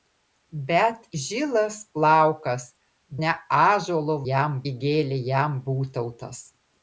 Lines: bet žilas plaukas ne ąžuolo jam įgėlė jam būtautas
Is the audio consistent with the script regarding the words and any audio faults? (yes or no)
yes